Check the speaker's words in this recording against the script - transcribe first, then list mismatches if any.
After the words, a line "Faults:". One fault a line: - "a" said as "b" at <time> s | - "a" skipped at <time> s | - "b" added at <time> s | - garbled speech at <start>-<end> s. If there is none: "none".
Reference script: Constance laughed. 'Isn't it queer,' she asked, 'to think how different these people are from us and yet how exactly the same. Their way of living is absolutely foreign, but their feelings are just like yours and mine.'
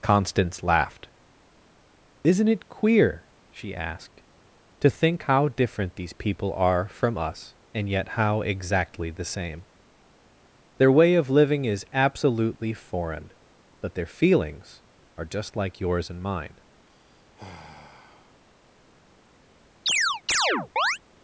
Constance laughed. 'Isn't it queer,' she asked, 'to think how different these people are from us and yet how exactly the same. Their way of living is absolutely foreign, but their feelings are just like yours and mine.'
Faults:
none